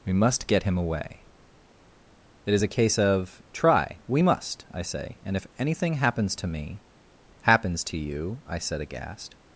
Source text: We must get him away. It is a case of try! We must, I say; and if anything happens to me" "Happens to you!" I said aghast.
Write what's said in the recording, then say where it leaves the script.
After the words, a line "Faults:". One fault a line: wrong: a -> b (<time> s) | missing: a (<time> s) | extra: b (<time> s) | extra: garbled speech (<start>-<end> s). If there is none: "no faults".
We must get him away. It is a case of try! We must, I say; and if anything happens to me" "Happens to you!" I said aghast.
Faults:
no faults